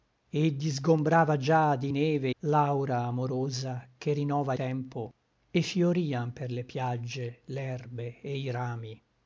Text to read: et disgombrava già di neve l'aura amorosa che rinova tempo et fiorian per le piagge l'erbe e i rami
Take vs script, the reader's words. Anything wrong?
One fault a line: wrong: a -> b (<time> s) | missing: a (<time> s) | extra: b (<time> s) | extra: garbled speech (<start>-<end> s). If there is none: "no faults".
no faults